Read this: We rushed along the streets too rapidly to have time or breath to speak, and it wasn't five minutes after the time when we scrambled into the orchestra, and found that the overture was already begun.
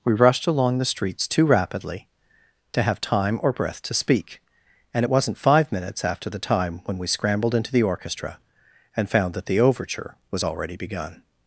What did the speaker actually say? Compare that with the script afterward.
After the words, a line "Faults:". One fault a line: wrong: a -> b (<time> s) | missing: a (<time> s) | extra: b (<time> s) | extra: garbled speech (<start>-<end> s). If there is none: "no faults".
We rushed along the streets too rapidly to have time or breath to speak, and it wasn't five minutes after the time when we scrambled into the orchestra, and found that the overture was already begun.
Faults:
no faults